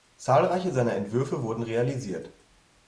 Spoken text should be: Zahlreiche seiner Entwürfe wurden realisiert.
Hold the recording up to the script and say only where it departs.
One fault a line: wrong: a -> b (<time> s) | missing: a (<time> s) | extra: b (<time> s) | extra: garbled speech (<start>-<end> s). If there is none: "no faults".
no faults